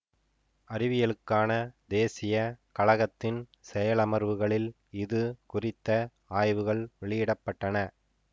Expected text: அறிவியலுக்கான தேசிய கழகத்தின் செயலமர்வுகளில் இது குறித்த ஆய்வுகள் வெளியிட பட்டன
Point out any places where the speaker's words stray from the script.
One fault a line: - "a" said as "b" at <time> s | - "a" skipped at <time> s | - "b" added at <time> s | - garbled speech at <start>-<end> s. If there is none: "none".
none